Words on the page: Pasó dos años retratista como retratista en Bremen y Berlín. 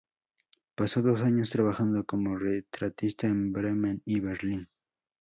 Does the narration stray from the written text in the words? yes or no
yes